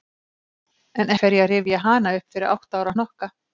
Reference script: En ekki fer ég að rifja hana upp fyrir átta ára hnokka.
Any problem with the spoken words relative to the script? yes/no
yes